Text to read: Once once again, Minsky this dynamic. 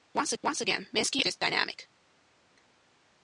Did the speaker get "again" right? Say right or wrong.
right